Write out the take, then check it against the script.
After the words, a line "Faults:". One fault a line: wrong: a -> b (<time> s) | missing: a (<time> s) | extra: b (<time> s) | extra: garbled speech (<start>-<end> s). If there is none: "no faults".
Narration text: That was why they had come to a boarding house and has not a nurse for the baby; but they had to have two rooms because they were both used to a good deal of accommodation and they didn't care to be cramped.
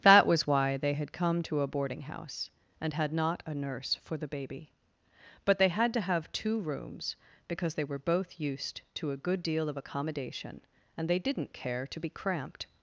That was why they had come to a boarding house and had not a nurse for the baby; but they had to have two rooms because they were both used to a good deal of accommodation and they didn't care to be cramped.
Faults:
wrong: has -> had (2.9 s)